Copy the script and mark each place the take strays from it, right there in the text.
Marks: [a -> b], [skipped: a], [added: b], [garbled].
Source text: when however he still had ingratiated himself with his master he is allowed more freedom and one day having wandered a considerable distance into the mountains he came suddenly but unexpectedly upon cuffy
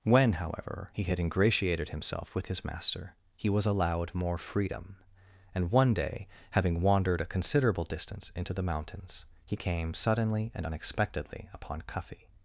when however he [skipped: still] had ingratiated himself with his master he [is -> was] allowed more freedom and one day having wandered a considerable distance into the mountains he came suddenly [but -> and] unexpectedly upon cuffy